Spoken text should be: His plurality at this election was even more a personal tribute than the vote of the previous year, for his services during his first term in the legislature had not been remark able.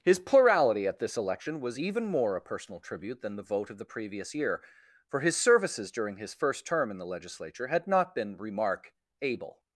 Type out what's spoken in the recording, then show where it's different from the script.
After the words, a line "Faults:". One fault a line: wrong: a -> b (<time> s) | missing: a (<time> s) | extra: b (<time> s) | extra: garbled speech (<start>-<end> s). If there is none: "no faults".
His plurality at this election was even more a personal tribute than the vote of the previous year, for his services during his first term in the legislature had not been remark able.
Faults:
no faults